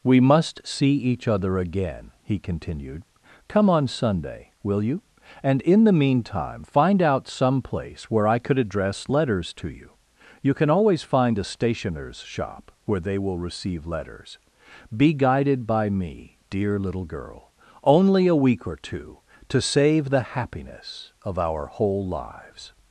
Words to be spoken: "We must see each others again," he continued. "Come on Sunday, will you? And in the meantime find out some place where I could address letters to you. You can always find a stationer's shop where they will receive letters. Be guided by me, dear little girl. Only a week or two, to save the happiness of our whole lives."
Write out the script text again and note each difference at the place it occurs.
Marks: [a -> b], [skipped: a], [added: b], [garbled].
"We must see each [others -> other] again," he continued. "Come on Sunday, will you? And in the meantime find out some place where I could address letters to you. You can always find a stationer's shop where they will receive letters. Be guided by me, dear little girl. Only a week or two, to save the happiness of our whole lives."